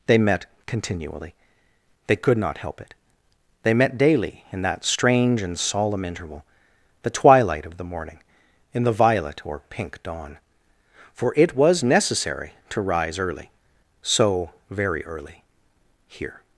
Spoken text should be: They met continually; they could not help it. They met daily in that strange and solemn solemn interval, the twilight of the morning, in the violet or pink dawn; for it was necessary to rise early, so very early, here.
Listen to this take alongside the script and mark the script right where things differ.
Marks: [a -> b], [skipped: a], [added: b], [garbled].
They met continually; they could not help it. They met daily in that strange and solemn [skipped: solemn] interval, the twilight of the morning, in the violet or pink dawn; for it was necessary to rise early, so very early, here.